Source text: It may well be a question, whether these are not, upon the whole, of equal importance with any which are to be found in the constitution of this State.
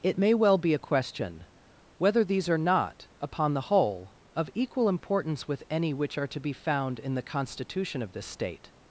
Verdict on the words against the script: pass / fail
pass